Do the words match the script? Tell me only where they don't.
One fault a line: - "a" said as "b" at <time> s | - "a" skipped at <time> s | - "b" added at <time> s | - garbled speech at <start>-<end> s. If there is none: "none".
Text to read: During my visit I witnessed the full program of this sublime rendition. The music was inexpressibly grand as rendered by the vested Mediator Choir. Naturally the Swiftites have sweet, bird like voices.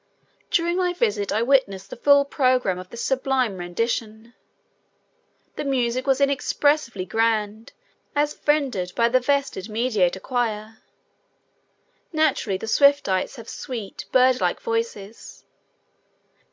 none